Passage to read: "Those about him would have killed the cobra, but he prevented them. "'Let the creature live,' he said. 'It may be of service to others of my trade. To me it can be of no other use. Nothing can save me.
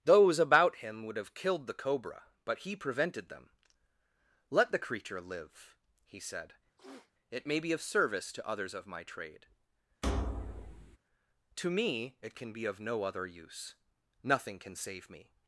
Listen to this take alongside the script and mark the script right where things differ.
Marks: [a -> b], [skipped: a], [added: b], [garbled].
"Those about him would have killed the cobra, but he prevented them. "'Let the creature live,' he said. 'It may be of service to others of my trade. To me it can be of no other use. Nothing can save me.